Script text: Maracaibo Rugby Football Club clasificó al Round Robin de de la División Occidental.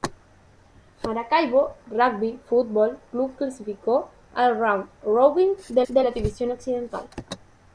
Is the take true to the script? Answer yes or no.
yes